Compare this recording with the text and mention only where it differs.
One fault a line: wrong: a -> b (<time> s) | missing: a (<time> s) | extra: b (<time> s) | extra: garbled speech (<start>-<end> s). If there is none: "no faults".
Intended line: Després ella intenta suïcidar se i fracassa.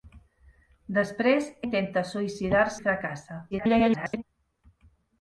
missing: ella (1.5 s)
missing: se (2.7 s)
extra: garbled speech (3.5-4.2 s)